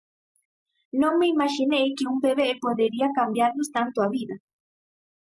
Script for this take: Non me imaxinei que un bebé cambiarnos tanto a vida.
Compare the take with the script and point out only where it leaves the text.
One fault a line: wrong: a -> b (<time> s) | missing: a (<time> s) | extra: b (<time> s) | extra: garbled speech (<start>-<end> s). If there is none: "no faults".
extra: podería (2.6 s)